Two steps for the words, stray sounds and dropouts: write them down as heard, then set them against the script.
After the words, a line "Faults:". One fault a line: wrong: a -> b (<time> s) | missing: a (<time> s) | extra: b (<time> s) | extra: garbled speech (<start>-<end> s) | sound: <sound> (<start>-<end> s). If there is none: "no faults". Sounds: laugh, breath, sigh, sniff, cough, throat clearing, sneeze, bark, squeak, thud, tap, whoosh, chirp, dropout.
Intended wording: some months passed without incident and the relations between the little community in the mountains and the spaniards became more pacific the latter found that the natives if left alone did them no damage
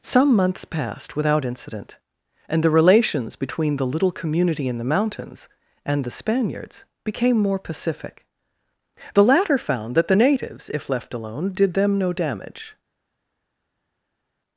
some months passed without incident and the relations between the little community in the mountains and the spaniards became more pacific the latter found that the natives if left alone did them no damage
Faults:
no faults